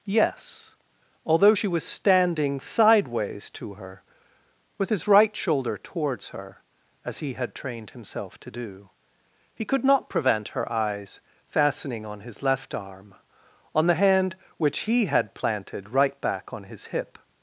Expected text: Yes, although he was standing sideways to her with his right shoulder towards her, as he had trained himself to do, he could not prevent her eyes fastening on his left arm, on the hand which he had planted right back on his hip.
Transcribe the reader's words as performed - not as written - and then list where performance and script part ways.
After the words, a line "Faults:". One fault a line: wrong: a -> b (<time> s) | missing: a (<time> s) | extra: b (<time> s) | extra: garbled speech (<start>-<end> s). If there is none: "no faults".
Yes, although she was standing sideways to her with his right shoulder towards her, as he had trained himself to do, he could not prevent her eyes fastening on his left arm, on the hand which he had planted right back on his hip.
Faults:
wrong: he -> she (1.5 s)